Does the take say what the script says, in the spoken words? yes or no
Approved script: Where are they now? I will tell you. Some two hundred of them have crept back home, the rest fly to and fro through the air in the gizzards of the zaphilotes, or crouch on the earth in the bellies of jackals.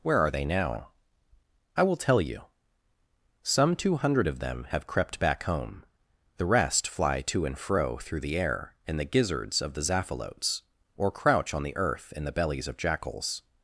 yes